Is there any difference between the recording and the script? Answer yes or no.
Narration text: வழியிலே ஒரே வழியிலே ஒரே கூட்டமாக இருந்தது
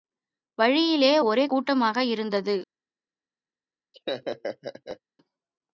yes